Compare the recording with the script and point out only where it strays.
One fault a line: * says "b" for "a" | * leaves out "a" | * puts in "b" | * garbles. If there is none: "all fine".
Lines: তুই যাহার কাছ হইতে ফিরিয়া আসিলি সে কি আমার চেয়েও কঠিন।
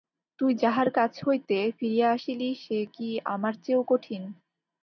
all fine